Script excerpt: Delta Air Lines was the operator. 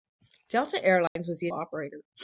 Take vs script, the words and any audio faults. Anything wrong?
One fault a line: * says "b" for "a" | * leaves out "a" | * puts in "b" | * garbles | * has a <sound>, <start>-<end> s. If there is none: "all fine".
* has a dropout, 1.1-1.2 s